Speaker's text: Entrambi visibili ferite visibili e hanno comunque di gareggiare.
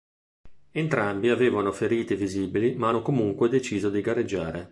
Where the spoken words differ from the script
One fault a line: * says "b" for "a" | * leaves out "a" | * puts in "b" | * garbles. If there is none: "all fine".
* says "avevano" for "visibili"
* says "ma" for "e"
* puts in "deciso"